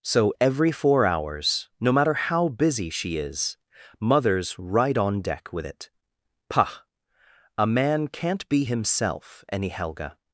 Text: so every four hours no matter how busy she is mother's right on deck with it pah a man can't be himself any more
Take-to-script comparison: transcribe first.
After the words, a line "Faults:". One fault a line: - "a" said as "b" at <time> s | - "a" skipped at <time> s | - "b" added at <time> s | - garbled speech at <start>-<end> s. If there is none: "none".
so every four hours no matter how busy she is mother's right on deck with it pah a man can't be himself any helga
Faults:
- "more" said as "helga" at 9.7 s